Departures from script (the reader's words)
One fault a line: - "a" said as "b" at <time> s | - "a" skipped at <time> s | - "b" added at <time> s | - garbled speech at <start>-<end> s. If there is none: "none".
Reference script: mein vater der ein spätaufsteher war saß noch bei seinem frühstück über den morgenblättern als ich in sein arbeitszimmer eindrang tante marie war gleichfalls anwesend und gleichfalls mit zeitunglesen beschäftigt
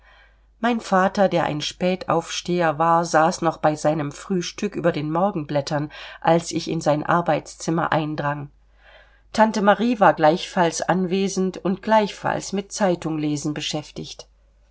none